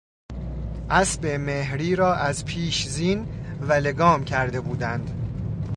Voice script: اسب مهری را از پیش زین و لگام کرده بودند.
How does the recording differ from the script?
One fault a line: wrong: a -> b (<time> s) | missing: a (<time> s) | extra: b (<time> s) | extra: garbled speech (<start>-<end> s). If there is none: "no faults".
no faults